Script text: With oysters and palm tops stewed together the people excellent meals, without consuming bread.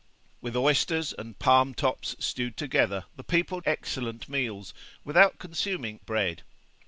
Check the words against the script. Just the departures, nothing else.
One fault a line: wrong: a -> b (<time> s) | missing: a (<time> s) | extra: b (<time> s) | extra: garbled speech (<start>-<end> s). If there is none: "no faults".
no faults